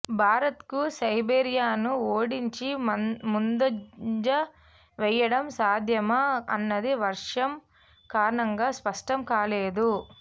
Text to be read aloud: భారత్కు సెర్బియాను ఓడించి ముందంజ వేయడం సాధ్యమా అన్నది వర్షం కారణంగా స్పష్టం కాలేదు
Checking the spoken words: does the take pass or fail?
pass